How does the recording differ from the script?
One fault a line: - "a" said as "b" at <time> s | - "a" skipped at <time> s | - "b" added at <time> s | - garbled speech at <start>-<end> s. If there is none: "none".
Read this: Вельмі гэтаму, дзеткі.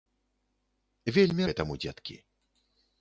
none